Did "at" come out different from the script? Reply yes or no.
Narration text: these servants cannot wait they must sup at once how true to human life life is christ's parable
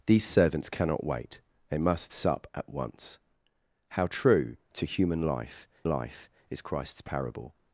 no